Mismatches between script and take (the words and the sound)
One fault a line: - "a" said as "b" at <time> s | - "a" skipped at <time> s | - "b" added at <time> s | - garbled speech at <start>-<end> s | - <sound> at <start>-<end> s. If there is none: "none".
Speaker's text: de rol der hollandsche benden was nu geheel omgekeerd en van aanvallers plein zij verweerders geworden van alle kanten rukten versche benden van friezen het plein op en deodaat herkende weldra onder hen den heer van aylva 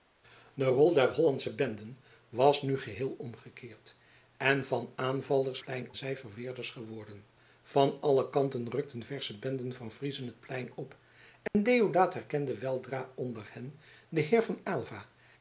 - dropout at 11.5-11.6 s